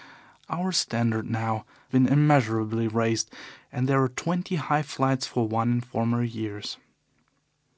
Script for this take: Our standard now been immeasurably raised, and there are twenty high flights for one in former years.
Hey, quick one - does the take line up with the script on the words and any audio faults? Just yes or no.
yes